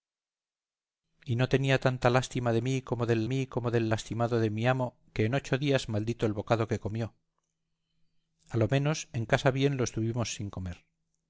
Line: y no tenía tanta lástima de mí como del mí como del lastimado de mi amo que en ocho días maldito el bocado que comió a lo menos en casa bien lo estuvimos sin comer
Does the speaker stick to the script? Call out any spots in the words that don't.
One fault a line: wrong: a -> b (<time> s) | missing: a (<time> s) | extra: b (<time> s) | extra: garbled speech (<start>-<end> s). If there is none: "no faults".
no faults